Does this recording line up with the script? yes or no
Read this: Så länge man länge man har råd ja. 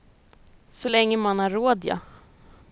no